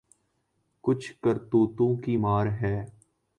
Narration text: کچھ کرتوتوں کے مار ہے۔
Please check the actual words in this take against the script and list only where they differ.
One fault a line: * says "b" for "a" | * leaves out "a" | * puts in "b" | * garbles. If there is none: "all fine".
* says "کی" for "کے"